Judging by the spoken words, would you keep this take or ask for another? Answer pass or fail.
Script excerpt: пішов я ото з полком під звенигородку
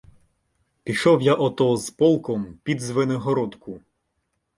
pass